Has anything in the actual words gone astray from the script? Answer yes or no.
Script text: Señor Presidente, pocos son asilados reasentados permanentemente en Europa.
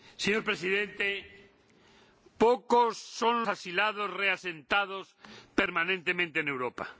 no